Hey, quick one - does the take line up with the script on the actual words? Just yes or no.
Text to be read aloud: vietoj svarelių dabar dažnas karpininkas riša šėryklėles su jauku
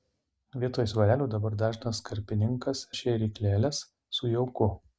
no